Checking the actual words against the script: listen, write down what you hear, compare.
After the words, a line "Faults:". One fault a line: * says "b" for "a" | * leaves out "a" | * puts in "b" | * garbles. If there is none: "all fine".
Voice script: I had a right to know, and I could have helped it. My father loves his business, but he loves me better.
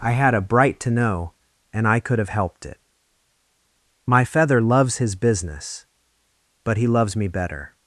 I had a bright to know, and I could have helped it. My feather loves his business, but he loves me better.
Faults:
* says "bright" for "right"
* says "feather" for "father"